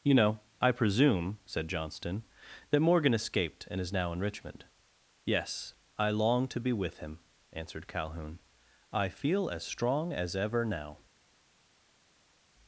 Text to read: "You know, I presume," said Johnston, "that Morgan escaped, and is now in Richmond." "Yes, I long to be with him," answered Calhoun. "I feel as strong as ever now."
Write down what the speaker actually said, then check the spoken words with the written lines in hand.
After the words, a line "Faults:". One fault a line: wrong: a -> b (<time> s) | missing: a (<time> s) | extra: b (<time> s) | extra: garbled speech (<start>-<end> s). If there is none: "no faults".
"You know, I presume," said Johnston, "that Morgan escaped, and is now in Richmond." "Yes, I long to be with him," answered Calhoun. "I feel as strong as ever now."
Faults:
no faults